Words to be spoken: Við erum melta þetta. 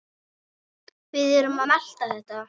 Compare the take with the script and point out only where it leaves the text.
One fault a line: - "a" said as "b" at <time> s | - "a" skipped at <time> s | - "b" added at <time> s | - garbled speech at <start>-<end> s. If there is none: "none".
- "að" added at 1.6 s